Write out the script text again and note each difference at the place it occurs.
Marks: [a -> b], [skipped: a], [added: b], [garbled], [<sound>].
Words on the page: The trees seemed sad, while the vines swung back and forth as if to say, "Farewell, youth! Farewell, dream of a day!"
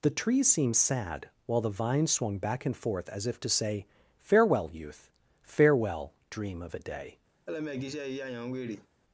The trees seemed sad, while the vines swung back and forth as if to say, "Farewell, youth! Farewell, dream of a day!" [laugh]